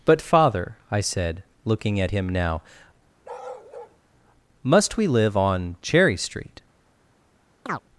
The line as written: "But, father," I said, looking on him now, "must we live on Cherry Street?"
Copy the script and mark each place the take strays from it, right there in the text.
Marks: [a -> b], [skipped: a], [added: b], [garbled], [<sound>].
"But, father," I said, looking [on -> at] him now, [bark] "must we live on Cherry Street?" [chirp]